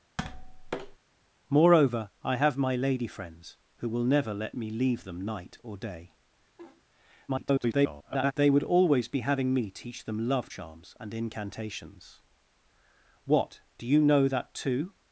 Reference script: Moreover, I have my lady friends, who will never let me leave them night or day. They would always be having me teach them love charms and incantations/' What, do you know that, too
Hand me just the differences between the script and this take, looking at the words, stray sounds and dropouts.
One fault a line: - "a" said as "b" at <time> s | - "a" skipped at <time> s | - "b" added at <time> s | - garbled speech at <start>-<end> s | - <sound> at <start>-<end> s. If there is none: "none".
- tap at 0.2-1.0 s
- laugh at 6.6-6.8 s
- garbled speech at 7.3-8.3 s